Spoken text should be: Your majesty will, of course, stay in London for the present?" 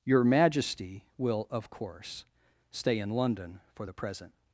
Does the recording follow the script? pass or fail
pass